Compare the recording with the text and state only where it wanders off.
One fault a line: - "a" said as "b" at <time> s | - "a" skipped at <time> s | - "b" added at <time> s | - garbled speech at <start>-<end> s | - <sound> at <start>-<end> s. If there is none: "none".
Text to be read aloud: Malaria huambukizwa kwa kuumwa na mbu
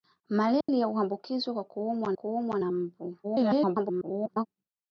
- dropout at 0.6-0.7 s
- "kuumwa" added at 2.1 s
- garbled speech at 3.2-4.5 s